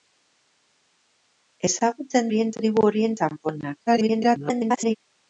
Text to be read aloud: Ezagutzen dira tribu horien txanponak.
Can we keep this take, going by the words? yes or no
no